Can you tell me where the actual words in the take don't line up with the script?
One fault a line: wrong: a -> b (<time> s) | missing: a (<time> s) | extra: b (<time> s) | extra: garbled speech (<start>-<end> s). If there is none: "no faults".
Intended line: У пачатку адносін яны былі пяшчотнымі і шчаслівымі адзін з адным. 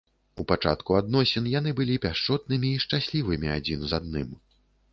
no faults